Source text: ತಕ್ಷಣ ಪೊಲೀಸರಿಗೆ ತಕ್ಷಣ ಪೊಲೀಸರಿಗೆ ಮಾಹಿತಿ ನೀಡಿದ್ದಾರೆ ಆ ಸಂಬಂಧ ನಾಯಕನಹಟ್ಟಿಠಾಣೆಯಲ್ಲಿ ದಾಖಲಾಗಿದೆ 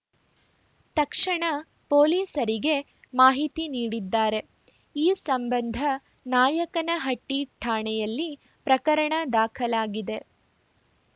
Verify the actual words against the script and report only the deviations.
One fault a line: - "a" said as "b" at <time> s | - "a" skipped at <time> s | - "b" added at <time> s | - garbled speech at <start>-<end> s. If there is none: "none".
- "ತಕ್ಷಣ ಪೊಲೀಸರಿಗೆ" skipped at 2.7 s
- "ಆ" said as "ಈ" at 4.9 s
- "ಪ್ರಕರಣ" added at 8.7 s